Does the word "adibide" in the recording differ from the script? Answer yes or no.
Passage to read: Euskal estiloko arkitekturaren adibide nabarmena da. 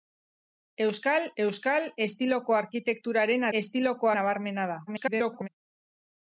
yes